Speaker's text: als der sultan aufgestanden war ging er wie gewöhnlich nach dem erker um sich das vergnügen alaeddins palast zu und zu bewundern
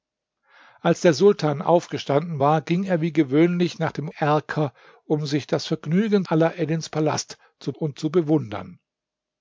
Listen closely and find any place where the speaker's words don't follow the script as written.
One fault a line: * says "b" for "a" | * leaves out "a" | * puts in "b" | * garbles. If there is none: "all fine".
all fine